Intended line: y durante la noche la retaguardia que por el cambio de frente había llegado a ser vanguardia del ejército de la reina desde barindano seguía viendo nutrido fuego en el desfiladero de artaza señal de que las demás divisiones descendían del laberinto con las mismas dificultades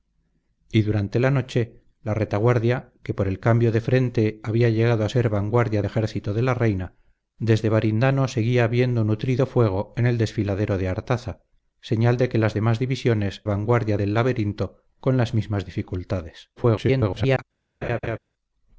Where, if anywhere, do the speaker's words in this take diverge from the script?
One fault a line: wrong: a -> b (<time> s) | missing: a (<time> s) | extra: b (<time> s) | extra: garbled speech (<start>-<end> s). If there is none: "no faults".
missing: del (5.8 s)
wrong: descendían -> vanguardia (13.4 s)
extra: garbled speech (16.6-17.4 s)